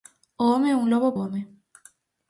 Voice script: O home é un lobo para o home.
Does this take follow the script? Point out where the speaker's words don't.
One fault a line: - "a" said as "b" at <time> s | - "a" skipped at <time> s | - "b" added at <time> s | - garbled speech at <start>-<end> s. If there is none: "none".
- "para" skipped at 1.1 s